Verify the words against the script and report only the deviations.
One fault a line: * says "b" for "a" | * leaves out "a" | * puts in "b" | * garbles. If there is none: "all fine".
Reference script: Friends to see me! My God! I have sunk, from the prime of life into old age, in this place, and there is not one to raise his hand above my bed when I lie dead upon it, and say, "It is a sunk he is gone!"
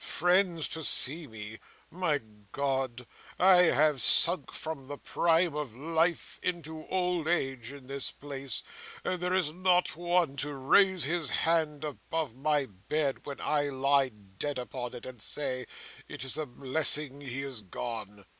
* says "blessing" for "sunk"